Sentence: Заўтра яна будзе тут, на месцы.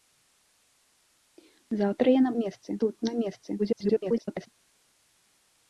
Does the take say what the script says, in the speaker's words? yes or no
no